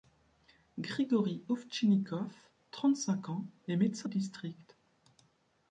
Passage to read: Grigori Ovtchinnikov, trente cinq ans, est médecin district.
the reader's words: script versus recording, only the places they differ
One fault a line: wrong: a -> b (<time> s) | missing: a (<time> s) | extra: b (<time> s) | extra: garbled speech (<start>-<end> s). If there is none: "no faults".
no faults